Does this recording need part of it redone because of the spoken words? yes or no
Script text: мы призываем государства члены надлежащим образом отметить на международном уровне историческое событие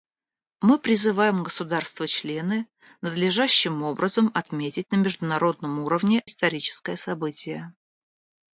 no